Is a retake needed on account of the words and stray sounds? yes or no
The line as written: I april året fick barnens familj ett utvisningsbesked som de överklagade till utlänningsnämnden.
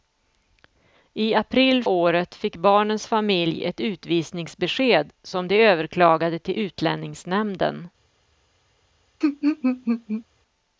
yes